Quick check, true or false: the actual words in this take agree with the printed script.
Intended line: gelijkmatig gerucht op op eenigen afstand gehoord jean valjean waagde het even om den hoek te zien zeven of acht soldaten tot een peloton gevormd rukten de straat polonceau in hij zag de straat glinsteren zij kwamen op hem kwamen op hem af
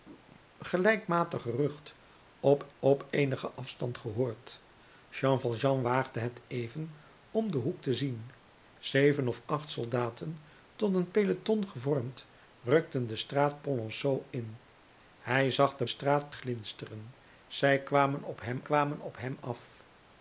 true